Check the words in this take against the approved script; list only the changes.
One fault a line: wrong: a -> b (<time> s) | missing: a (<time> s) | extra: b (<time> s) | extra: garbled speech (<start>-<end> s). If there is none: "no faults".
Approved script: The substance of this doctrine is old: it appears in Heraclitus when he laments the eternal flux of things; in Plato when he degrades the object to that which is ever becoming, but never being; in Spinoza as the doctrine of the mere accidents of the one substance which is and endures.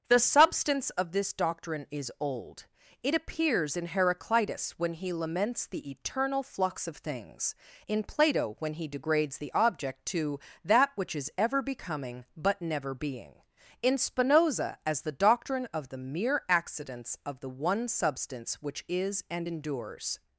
no faults